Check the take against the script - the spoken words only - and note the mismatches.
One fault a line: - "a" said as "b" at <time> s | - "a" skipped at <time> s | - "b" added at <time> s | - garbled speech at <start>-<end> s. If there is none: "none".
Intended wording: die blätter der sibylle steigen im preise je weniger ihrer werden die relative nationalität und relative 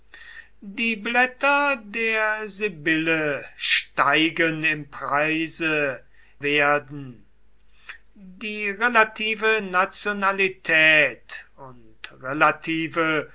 - "je weniger ihrer" skipped at 6.0 s